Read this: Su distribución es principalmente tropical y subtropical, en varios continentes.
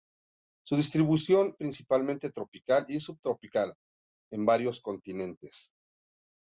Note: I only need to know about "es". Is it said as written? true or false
false